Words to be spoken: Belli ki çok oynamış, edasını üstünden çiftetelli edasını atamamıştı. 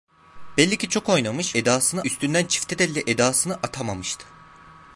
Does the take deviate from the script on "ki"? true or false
false